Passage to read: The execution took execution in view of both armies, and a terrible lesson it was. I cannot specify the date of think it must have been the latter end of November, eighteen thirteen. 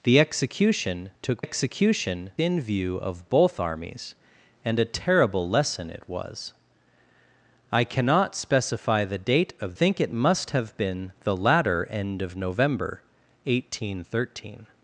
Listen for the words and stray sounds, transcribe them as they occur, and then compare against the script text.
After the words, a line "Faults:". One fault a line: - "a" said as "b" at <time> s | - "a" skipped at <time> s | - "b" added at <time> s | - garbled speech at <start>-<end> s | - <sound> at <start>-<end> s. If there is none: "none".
The execution took execution in view of both armies, and a terrible lesson it was. I cannot specify the date of think it must have been the latter end of November, eighteen thirteen.
Faults:
none